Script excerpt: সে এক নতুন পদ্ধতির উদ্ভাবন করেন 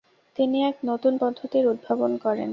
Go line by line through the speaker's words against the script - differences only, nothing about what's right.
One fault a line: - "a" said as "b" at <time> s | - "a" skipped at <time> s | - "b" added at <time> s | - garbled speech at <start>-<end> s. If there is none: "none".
- "সে" said as "তিনি" at 0.3 s